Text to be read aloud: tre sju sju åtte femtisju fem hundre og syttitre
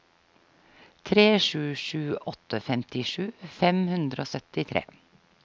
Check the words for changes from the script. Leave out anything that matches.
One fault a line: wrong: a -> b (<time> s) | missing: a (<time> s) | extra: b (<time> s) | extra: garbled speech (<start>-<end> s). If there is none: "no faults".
no faults